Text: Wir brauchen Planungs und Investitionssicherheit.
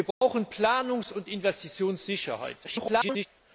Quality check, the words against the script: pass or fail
fail